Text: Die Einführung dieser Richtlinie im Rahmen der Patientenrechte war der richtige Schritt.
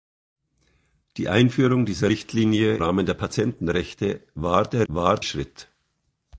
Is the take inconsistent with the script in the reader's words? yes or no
yes